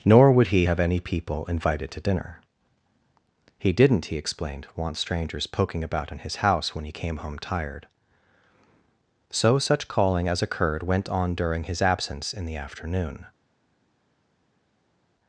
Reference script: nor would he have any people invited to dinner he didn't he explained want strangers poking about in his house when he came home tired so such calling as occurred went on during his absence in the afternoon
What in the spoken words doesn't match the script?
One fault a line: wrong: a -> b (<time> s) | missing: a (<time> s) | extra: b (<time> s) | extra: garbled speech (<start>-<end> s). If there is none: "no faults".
no faults